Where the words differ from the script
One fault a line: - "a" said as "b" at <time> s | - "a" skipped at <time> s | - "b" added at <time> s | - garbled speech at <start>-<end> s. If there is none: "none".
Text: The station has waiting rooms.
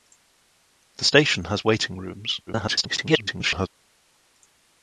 - garbled speech at 2.5-3.7 s